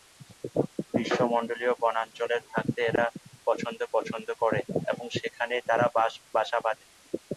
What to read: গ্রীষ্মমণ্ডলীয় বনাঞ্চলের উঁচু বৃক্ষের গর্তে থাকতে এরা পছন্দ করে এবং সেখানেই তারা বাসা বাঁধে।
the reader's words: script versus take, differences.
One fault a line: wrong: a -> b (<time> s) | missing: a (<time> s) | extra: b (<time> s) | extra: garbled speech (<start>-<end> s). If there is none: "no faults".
missing: উঁচু বৃক্ষের গর্তে (2.4 s)
extra: পছন্দ (3.9 s)